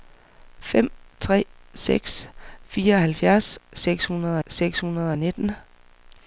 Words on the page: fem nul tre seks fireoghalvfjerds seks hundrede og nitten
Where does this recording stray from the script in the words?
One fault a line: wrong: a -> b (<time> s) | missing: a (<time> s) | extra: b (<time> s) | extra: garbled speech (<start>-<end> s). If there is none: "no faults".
missing: nul (0.9 s)
extra: seks hundrede (4.5 s)